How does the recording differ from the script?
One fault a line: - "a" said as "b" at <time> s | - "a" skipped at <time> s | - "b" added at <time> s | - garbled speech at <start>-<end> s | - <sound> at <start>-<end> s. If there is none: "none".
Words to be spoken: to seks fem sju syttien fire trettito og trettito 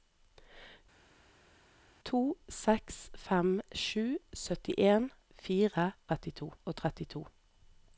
none